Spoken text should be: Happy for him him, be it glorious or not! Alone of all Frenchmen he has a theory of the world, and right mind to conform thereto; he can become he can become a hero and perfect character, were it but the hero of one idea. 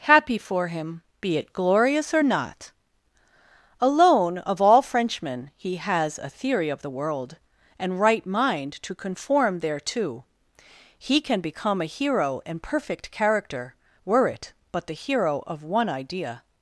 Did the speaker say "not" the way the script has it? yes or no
yes